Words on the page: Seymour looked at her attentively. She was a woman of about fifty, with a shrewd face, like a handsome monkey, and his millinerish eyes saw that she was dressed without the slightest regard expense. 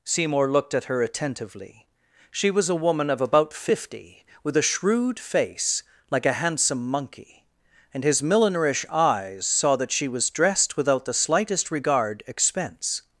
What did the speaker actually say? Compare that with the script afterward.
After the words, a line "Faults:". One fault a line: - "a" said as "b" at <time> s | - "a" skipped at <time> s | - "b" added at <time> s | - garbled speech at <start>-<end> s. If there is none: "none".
Seymour looked at her attentively. She was a woman of about fifty, with a shrewd face, like a handsome monkey, and his millinerish eyes saw that she was dressed without the slightest regard expense.
Faults:
none